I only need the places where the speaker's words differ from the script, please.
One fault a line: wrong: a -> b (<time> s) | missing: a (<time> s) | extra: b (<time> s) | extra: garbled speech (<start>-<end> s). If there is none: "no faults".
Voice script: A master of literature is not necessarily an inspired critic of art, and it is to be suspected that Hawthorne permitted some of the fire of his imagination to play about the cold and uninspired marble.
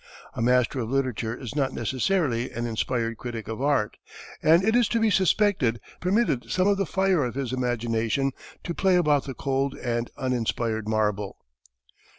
missing: that Hawthorne (5.8 s)